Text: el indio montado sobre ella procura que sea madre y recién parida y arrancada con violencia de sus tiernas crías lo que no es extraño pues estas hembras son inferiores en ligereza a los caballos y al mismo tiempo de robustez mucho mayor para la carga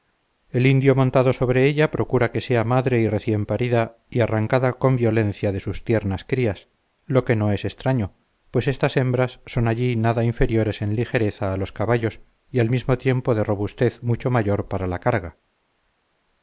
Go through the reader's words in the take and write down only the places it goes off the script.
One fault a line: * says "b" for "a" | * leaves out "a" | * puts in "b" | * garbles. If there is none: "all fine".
* puts in "allí nada"